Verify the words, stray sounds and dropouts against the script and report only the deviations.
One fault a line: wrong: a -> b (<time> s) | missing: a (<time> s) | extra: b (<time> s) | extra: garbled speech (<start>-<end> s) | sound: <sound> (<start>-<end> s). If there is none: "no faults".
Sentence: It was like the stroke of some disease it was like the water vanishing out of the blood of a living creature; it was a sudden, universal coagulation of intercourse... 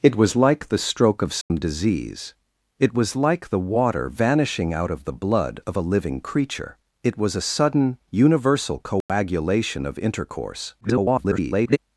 sound: dropout (1.4-1.5 s)
sound: dropout (9.0-9.1 s)
extra: garbled speech (10.8-11.8 s)